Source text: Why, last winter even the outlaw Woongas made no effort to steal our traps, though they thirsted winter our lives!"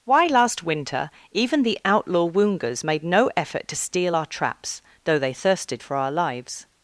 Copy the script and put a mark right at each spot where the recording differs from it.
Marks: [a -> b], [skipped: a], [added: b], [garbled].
Why, last winter even the outlaw Woongas made no effort to steal our traps, though they thirsted [winter -> for] our lives!"